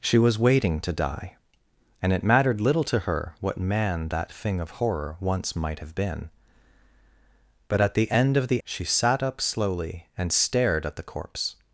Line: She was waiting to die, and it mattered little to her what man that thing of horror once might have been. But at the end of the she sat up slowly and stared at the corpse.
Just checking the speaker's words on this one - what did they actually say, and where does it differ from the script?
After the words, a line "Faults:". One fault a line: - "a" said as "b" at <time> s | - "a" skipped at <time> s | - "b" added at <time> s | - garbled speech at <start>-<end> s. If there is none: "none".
She was waiting to die, and it mattered little to her what man that thing of horror once might have been. But at the end of the she sat up slowly and stared at the corpse.
Faults:
none